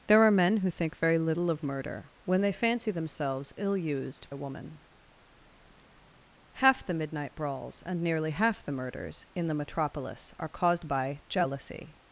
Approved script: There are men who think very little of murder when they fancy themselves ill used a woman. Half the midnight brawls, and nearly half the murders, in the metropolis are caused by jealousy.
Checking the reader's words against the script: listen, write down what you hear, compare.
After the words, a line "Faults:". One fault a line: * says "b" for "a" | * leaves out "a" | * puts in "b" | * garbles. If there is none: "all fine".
There are men who think very little of murder when they fancy themselves ill used a woman. Half the midnight brawls, and nearly half the murders, in the metropolis are caused by jealousy.
Faults:
all fine